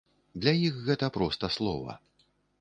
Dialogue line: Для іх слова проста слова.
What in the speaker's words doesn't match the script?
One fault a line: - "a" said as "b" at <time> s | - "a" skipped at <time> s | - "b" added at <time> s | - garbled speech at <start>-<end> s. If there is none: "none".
- "слова" said as "гэта" at 0.9 s